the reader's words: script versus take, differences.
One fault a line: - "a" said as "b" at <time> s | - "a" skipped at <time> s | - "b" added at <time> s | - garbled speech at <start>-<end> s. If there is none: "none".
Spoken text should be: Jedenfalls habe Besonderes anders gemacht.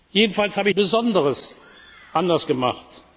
none